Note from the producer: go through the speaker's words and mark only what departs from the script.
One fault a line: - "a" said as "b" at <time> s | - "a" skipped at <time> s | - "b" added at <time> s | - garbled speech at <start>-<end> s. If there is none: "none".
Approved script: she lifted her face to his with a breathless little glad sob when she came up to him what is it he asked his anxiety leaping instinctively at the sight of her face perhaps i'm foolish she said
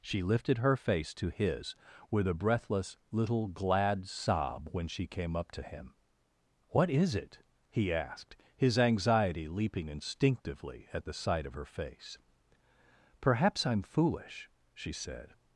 none